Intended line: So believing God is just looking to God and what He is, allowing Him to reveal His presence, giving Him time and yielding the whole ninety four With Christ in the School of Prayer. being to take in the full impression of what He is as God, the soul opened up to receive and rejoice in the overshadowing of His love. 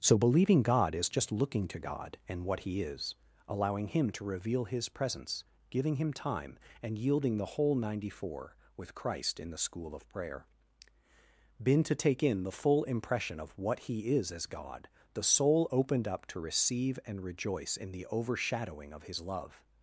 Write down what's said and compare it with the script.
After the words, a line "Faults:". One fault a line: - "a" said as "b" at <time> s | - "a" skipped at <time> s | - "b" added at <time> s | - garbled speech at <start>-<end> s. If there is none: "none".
So believing God is just looking to God and what He is, allowing Him to reveal His presence, giving Him time and yielding the whole ninety four With Christ in the School of Prayer. been to take in the full impression of what He is as God, the soul opened up to receive and rejoice in the overshadowing of His love.
Faults:
- "being" said as "been" at 11.6 s